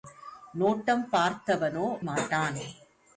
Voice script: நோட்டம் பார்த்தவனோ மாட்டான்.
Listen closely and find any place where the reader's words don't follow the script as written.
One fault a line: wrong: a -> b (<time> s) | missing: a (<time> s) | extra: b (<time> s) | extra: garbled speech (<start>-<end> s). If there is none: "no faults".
no faults